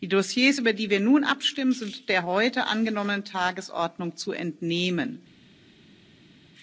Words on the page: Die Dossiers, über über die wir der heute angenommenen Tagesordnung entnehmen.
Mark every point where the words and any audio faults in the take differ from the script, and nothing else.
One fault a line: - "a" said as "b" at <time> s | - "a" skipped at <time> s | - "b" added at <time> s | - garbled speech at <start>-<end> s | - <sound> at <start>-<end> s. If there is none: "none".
- "über" skipped at 0.7 s
- "nun abstimmen sind" added at 1.0 s
- "zu" added at 4.1 s